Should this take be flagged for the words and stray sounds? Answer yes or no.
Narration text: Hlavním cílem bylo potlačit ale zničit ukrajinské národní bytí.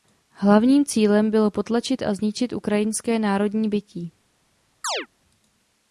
yes